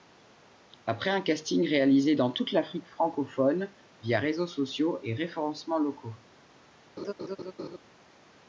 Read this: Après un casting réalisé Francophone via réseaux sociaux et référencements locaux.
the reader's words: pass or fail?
fail